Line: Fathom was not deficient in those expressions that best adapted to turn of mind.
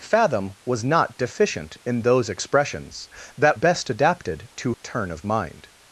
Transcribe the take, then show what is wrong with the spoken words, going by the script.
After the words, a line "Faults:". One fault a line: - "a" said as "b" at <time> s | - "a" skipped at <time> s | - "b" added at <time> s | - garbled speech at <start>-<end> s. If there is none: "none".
Fathom was not deficient in those expressions that best adapted to turn of mind.
Faults:
none